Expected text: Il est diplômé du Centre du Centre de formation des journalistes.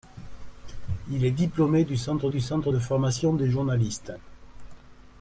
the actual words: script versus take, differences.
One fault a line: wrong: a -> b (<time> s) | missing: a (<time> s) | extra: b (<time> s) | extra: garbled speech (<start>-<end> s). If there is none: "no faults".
no faults